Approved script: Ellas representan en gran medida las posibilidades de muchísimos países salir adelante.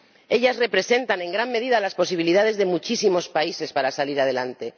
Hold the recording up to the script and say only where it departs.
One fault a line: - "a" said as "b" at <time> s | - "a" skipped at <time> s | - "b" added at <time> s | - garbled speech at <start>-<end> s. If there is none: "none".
- "para" added at 3.7 s